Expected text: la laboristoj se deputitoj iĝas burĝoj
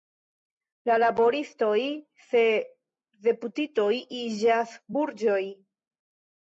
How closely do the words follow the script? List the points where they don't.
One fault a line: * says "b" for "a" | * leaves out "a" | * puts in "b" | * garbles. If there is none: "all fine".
all fine